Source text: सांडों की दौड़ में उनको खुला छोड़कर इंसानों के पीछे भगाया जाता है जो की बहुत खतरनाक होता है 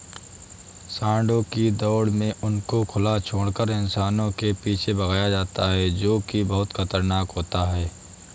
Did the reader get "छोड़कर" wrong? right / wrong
right